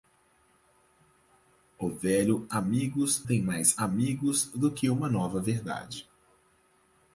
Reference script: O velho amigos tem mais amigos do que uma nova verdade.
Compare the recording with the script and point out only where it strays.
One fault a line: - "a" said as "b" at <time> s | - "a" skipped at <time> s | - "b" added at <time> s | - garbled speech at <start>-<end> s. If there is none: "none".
none